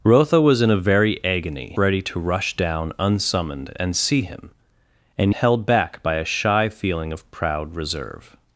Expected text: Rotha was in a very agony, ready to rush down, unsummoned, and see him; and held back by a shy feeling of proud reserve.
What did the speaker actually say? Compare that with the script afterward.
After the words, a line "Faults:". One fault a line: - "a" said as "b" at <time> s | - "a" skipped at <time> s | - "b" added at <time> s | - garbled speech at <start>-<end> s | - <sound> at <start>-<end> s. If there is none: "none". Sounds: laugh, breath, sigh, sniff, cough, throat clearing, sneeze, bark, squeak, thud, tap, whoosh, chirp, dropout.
Rotha was in a very agony, ready to rush down, unsummoned, and see him; and held back by a shy feeling of proud reserve.
Faults:
none